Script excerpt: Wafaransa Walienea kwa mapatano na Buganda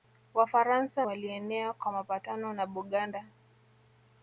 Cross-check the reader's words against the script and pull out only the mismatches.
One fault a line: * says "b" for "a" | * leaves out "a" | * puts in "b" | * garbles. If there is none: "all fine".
all fine